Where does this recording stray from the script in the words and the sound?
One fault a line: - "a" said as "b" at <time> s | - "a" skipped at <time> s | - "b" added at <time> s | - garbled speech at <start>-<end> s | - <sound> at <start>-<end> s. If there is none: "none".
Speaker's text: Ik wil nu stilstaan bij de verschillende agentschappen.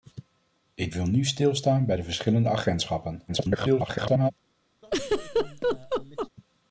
- garbled speech at 3.3-4.3 s
- laugh at 4.8-6.3 s